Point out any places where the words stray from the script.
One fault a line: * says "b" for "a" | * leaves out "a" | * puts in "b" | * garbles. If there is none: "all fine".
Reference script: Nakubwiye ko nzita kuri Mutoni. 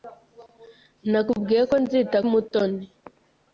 * leaves out "kuri"